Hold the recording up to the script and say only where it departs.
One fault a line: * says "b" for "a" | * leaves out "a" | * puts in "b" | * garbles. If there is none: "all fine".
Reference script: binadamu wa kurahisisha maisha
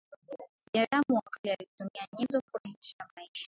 * puts in "kale alitumia nyenzo"